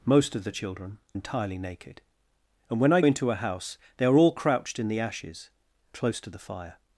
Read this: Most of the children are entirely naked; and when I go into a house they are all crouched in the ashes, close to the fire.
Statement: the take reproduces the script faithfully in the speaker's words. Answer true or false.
false